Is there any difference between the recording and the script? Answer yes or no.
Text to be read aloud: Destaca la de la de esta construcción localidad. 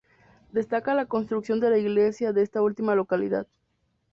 yes